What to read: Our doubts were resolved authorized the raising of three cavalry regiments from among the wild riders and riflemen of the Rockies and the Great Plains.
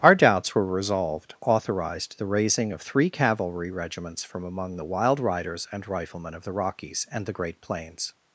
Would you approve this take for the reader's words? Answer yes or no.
yes